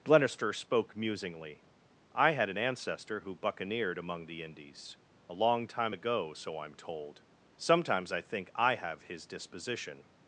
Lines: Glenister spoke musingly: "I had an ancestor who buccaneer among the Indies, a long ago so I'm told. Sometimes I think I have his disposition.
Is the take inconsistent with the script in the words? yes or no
yes